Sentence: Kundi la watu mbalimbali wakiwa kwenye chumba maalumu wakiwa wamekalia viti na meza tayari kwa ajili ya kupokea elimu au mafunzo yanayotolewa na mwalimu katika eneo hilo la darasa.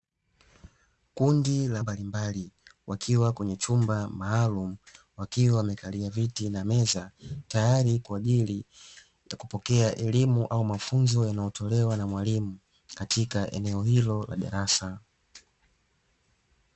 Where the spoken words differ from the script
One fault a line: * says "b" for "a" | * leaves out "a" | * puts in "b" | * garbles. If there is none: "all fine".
* leaves out "watu"